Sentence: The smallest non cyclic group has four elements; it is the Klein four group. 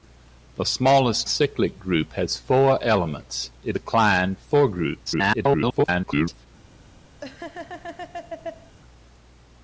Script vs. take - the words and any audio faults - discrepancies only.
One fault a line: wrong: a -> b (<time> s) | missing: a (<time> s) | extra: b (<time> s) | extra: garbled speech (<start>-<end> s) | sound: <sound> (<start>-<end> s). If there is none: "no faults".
missing: non (1.3 s)
missing: is (3.8 s)
extra: garbled speech (5.1-6.5 s)
sound: laugh (7.2-8.8 s)